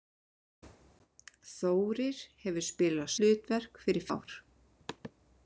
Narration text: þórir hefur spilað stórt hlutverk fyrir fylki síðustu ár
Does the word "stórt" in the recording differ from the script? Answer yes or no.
yes